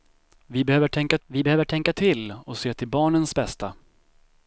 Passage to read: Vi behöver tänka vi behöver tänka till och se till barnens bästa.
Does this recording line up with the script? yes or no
yes